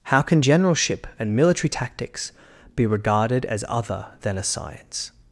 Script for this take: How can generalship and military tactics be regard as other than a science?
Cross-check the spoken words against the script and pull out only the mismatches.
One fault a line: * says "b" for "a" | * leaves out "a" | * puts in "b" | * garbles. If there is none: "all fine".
* says "regarded" for "regard"